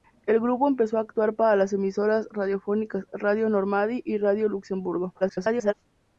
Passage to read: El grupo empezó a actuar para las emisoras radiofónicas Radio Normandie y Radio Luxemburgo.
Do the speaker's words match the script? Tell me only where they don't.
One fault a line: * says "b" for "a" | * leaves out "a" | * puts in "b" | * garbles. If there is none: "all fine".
* garbles